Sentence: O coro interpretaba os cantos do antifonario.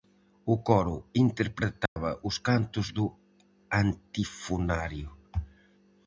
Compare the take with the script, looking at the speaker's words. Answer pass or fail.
pass